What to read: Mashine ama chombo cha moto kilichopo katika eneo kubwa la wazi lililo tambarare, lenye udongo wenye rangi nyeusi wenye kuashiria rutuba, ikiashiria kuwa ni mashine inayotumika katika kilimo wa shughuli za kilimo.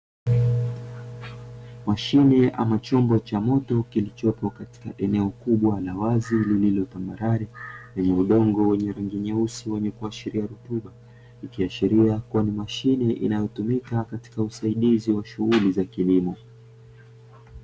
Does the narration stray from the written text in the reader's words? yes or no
yes